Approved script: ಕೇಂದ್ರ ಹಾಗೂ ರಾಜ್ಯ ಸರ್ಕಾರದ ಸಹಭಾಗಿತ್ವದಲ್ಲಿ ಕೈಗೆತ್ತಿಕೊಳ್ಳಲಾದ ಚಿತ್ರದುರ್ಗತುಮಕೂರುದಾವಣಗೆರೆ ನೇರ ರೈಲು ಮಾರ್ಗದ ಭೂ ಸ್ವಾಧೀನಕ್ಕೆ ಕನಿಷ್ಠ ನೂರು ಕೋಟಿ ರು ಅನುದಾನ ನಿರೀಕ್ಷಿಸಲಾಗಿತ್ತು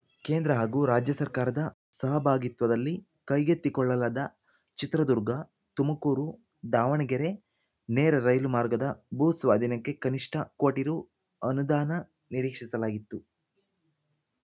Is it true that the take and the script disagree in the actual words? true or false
true